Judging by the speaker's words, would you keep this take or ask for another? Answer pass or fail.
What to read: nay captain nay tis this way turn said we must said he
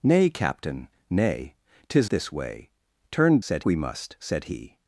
pass